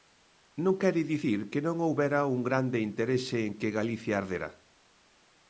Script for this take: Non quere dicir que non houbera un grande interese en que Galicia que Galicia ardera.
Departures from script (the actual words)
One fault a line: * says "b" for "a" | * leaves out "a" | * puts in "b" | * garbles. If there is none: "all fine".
* leaves out "que Galicia"